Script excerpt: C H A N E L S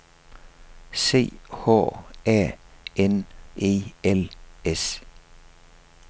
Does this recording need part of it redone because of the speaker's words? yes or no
no